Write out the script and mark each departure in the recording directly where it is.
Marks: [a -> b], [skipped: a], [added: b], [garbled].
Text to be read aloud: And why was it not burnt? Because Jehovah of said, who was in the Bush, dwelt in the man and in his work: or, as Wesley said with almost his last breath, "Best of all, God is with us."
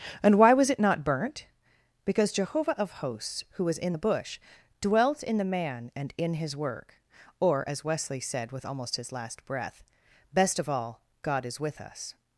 And why was it not burnt? Because Jehovah of [said, -> hosts] who was in the Bush, dwelt in the man and in his work: or, as Wesley said with almost his last breath, "Best of all, God is with us."